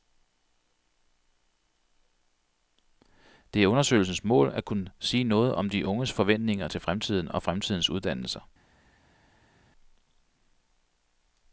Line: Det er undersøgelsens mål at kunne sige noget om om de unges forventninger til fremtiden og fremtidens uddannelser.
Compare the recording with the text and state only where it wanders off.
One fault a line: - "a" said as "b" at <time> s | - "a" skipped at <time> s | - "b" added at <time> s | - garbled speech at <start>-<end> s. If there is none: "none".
- "om" skipped at 5.7 s